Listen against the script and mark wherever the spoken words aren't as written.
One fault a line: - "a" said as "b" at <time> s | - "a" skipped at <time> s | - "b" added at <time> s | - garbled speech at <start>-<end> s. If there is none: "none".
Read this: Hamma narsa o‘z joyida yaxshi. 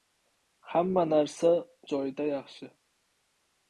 - "o‘z" skipped at 1.5 s